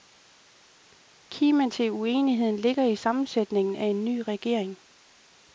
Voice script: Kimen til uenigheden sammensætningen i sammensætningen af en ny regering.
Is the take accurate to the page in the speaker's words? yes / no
no